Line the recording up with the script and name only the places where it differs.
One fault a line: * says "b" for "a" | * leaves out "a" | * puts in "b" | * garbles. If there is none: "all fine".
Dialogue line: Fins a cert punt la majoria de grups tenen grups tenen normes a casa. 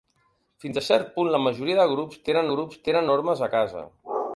all fine